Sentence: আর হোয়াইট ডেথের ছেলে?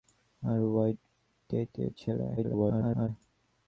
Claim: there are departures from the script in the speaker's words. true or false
true